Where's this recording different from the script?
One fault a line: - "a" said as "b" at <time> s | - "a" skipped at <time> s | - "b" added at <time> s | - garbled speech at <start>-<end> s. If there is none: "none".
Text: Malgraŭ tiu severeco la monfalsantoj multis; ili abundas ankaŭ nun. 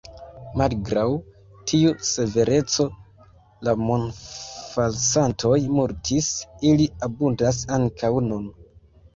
none